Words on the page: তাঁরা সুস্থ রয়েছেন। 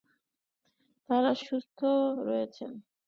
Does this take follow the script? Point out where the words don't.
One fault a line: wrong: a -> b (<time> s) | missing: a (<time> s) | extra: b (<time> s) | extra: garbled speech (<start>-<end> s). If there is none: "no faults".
no faults